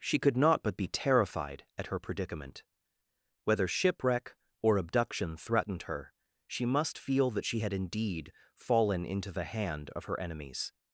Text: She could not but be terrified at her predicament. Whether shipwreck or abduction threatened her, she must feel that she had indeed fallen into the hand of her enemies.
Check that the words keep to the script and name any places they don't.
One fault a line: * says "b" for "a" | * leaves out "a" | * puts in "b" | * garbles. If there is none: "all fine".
all fine